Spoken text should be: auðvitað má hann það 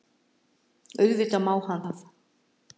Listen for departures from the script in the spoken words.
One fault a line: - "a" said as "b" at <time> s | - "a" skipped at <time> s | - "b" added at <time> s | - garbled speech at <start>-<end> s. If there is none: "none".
none